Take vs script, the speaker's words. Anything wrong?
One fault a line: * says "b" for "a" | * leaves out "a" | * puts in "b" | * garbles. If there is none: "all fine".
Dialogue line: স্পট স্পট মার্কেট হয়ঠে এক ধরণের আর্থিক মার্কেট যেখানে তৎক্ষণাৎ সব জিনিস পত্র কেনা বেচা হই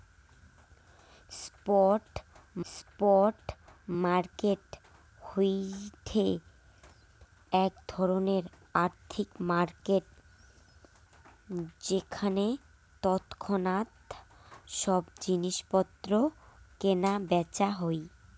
all fine